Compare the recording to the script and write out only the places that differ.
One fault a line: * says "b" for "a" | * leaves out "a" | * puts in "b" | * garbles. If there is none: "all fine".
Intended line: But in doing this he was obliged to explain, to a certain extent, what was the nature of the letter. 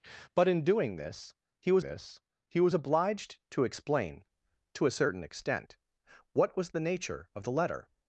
* puts in "this he was"